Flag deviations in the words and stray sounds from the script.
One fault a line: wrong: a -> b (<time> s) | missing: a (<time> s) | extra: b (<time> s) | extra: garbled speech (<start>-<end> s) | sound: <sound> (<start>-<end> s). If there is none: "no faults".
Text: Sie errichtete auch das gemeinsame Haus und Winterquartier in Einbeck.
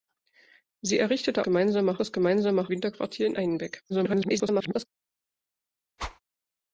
wrong: auch -> gemeinsame (1.4 s)
missing: Haus und (2.7 s)
extra: garbled speech (3.9-4.9 s)
sound: whoosh (6.0-6.2 s)